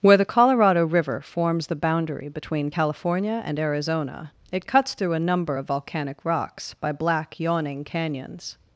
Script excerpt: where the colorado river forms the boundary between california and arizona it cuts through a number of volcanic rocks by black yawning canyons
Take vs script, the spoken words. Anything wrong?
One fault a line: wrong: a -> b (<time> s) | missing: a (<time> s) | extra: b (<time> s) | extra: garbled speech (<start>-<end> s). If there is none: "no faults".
no faults